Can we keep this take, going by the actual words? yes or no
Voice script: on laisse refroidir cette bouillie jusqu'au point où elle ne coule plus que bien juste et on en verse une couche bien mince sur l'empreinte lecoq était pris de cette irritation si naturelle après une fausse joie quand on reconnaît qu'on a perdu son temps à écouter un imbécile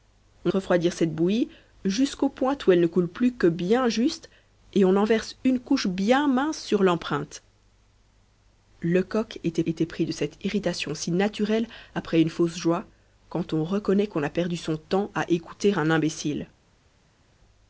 no